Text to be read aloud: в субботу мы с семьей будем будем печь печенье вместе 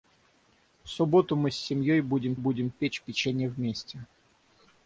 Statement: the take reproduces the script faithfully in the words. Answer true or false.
true